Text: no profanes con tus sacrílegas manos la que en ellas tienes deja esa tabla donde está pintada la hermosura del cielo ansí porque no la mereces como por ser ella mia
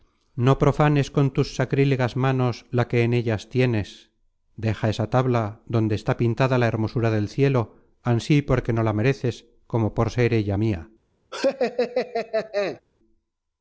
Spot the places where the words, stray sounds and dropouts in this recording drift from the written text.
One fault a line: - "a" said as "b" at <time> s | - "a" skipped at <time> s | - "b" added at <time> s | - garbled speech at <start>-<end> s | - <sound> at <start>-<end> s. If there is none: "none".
- laugh at 11.3-12.8 s